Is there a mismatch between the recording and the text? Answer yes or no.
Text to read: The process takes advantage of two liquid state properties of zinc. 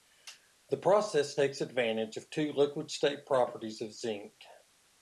no